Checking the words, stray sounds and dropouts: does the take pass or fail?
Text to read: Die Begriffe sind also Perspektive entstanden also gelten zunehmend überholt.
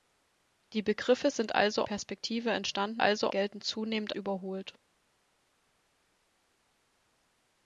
pass